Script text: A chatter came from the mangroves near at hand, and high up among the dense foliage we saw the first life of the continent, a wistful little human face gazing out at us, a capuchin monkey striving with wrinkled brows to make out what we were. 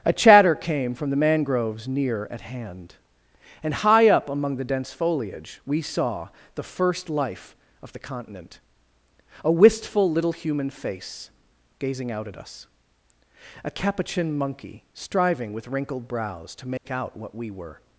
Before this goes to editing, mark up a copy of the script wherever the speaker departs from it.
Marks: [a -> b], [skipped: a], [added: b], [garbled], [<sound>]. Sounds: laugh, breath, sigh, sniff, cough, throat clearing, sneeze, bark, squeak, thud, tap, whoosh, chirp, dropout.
A chatter came from the mangroves near at hand, and high up among the dense foliage we saw the first life of the continent, a wistful little human face gazing out at us, a capuchin monkey striving with wrinkled brows to make [dropout] out what we were.